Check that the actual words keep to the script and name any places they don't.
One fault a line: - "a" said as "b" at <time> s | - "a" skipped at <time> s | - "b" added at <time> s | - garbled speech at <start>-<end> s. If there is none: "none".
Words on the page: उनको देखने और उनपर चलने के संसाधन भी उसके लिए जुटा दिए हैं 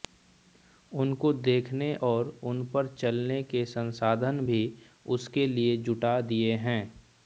none